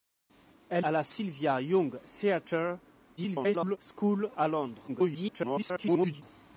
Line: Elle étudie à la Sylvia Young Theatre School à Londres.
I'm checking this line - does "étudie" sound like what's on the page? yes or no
no